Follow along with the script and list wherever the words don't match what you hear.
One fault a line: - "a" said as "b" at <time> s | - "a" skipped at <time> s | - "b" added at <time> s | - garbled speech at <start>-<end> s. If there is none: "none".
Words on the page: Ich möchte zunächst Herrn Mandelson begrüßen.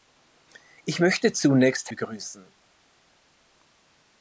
- "Herrn Mandelson" skipped at 1.9 s